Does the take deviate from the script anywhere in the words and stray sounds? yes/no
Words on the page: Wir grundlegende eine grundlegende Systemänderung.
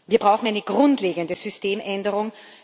yes